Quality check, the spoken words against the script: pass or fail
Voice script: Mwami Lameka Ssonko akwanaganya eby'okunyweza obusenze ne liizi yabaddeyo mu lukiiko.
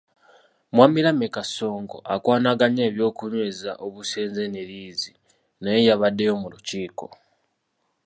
fail